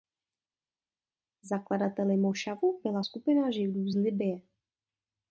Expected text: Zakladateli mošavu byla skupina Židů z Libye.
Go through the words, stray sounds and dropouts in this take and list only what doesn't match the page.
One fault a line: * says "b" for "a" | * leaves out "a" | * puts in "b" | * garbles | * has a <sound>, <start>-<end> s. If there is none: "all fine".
all fine